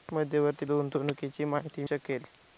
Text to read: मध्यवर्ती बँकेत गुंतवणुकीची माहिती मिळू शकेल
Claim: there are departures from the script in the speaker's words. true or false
true